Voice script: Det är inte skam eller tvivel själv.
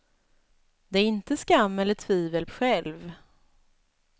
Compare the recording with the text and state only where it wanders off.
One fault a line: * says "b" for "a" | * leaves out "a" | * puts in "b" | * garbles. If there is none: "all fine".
all fine